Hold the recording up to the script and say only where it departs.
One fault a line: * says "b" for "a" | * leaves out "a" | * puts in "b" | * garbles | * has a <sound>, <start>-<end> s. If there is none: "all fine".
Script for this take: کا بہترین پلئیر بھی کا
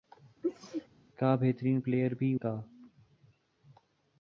* has a sneeze, 0.4-0.9 s